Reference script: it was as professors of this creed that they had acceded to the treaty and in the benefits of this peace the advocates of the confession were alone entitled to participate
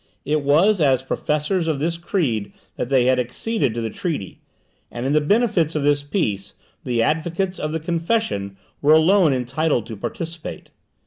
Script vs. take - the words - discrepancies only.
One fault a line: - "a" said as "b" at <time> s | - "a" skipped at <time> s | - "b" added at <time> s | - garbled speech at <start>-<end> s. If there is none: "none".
none